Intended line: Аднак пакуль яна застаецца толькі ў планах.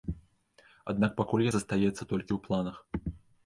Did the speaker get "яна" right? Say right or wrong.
wrong